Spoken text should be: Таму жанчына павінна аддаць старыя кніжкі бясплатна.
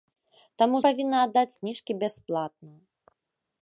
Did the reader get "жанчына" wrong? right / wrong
wrong